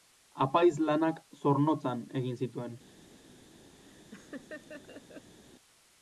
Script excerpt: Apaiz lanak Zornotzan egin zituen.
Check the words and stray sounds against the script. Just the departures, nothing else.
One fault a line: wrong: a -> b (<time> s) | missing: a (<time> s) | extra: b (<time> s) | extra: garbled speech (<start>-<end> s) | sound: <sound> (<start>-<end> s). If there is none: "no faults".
sound: laugh (3.8-5.4 s)